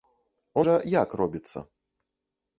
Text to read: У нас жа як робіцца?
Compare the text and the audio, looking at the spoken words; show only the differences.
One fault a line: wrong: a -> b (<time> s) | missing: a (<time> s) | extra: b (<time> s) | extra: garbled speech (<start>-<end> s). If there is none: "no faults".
missing: нас (0.6 s)